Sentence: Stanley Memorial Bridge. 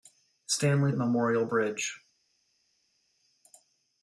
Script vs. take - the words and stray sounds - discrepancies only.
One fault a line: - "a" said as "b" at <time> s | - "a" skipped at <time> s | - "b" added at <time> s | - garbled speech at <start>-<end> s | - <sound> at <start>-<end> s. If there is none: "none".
none